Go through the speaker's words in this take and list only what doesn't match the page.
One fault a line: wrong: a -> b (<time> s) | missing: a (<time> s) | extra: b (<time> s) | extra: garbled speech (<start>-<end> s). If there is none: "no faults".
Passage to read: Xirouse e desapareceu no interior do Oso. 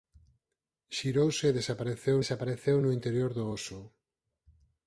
extra: desapareceu (2.2 s)